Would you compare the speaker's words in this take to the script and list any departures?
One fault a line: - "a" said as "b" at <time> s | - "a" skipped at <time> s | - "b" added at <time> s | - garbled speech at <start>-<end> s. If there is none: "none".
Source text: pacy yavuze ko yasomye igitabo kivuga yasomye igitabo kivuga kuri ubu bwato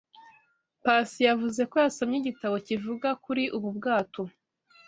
- "yasomye igitabo kivuga" skipped at 3.1 s